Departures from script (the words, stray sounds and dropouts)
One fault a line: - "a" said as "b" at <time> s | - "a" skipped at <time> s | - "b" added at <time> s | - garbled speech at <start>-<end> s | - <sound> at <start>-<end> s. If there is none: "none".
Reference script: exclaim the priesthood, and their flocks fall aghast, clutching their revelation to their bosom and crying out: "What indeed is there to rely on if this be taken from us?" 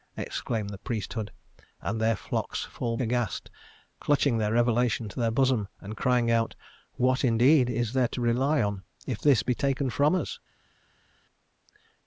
none